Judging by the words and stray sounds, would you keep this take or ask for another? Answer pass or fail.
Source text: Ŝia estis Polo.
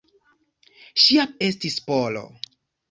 pass